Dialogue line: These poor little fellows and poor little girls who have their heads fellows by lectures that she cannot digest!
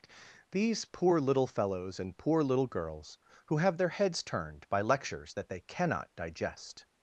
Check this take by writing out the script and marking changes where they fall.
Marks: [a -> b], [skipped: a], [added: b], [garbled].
These poor little fellows and poor little girls who have their heads [fellows -> turned] by lectures that [she -> they] cannot digest!